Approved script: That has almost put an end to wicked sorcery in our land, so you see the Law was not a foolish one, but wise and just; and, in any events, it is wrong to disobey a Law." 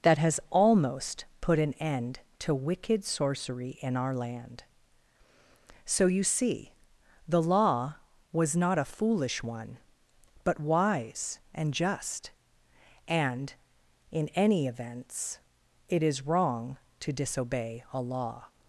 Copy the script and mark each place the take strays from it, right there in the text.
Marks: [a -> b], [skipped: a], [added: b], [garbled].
That has almost put an end to wicked sorcery in our land, so you see the Law was not a foolish one, but wise and just; and, in any events, it is wrong to disobey a Law."